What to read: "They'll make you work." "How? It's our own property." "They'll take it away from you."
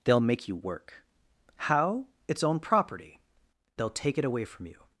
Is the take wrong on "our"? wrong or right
wrong